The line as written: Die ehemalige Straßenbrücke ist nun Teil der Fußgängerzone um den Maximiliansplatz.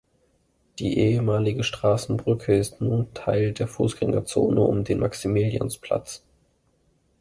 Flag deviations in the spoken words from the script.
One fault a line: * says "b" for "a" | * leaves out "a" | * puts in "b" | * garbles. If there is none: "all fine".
all fine